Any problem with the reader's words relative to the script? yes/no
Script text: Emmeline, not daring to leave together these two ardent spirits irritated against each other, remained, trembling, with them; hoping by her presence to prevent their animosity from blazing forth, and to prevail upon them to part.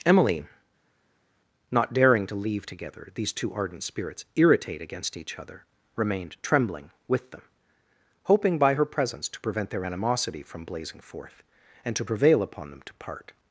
yes